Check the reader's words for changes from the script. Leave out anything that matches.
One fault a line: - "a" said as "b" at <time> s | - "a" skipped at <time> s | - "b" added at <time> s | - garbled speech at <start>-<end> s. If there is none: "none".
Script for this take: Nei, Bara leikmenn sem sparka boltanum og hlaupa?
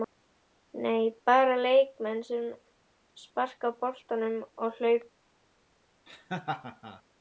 none